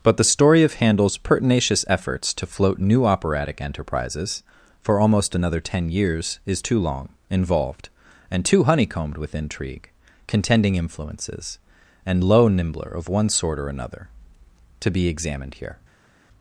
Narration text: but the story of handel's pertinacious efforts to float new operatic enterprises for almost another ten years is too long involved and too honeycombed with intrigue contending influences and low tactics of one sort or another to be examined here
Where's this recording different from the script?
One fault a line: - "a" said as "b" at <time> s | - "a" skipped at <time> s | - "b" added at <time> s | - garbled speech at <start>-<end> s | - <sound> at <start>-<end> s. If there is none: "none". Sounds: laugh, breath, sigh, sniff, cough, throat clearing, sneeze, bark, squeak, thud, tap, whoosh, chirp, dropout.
- "tactics" said as "nimbler" at 12.5 s